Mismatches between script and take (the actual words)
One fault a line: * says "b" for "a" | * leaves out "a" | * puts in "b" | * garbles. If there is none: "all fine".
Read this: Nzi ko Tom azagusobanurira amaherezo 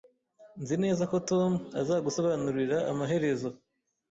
* puts in "neza"